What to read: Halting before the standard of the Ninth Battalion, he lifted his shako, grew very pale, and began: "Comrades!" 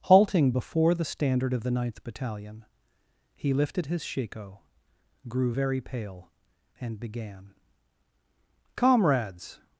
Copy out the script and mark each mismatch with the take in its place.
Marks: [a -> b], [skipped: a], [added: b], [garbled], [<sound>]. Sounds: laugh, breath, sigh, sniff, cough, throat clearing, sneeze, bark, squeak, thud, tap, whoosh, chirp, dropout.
Halting before the standard of the Ninth Battalion, he lifted his shako, grew very pale, and began: "Comrades!"